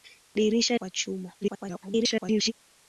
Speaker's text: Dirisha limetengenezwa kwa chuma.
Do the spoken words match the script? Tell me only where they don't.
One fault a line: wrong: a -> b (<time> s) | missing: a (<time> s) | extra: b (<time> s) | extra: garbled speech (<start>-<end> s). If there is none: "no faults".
missing: limetengenezwa (0.8 s)
extra: garbled speech (1.4-2.5 s)